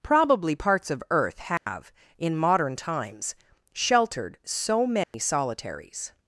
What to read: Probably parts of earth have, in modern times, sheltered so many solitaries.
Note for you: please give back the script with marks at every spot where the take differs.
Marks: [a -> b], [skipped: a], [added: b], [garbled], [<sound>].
Probably parts of earth have, [dropout] in modern times, sheltered so many [dropout] solitaries.